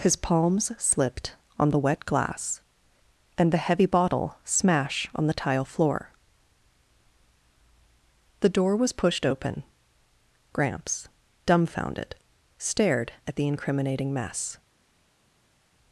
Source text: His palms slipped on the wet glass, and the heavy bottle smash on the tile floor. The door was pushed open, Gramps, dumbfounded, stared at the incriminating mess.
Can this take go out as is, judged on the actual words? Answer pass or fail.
pass